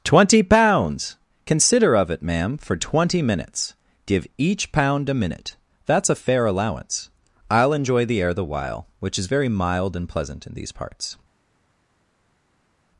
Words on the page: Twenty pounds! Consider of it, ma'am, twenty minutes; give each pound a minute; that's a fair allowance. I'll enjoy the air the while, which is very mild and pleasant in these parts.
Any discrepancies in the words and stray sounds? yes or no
yes